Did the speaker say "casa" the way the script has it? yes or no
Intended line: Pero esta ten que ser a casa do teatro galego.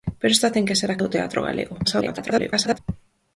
no